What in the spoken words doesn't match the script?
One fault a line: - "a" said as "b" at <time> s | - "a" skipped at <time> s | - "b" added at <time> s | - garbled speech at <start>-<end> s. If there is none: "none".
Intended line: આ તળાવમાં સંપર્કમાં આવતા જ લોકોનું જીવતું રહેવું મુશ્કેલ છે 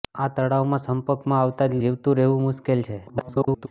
- "લોકોનું" skipped at 1.8 s
- garbled speech at 3.1-3.7 s